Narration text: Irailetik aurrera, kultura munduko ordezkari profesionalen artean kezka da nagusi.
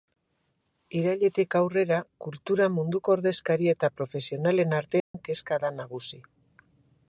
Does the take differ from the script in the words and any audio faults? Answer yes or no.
yes